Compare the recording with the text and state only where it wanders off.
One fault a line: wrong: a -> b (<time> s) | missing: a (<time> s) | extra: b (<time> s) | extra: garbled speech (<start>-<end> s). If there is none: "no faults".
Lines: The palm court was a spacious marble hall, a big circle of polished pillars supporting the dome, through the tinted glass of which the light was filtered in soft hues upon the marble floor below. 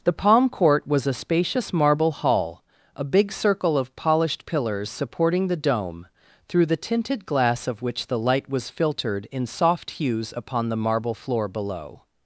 no faults